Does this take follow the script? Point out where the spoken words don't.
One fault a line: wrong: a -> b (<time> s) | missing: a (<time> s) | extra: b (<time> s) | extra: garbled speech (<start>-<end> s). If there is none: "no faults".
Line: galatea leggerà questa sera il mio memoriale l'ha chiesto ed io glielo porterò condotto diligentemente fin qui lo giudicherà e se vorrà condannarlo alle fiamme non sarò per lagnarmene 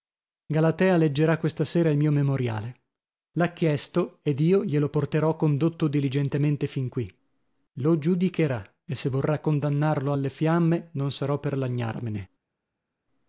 no faults